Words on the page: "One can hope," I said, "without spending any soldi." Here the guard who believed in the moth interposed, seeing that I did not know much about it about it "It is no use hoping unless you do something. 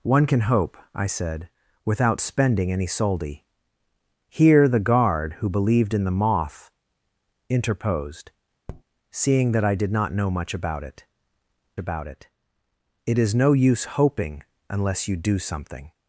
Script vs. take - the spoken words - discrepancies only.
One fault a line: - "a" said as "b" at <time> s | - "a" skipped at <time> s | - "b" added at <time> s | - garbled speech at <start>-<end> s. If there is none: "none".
none